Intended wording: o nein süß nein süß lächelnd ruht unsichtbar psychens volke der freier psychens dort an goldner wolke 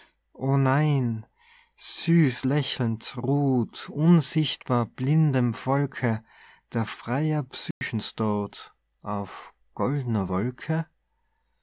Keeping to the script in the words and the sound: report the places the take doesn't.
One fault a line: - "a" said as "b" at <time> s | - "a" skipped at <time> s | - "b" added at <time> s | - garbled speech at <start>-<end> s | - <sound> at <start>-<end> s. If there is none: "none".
- "nein süß" skipped at 2.5 s
- "psychens" said as "blindem" at 4.9 s
- dropout at 7.7-7.8 s
- "an" said as "auf" at 9.0 s